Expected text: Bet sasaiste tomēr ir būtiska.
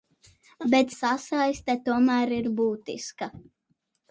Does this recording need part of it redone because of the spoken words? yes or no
no